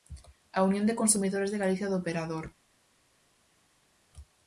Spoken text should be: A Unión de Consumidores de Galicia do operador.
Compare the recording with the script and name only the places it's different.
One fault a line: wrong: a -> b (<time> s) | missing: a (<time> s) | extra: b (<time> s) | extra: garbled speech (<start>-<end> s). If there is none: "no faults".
no faults